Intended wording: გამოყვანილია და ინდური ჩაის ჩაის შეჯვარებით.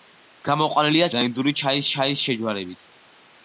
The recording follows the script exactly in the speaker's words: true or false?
true